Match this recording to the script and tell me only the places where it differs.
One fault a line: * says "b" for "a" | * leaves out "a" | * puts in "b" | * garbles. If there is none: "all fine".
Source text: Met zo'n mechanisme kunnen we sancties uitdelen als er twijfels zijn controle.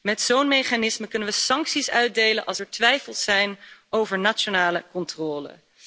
* puts in "over nationale"